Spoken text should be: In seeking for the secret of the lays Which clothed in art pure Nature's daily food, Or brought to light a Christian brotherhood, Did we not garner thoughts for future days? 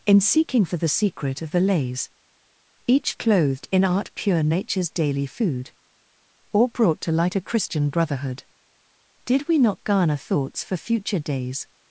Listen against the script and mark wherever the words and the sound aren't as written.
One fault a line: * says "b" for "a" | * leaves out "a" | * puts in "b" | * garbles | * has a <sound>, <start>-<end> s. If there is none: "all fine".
* says "Each" for "Which"